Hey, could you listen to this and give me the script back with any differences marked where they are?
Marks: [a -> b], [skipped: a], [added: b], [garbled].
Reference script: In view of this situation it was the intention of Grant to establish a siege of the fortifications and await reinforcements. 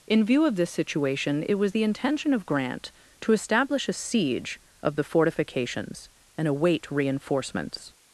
In view of this situation it was the intention of Grant to establish a siege of the fortifications and await reinforcements.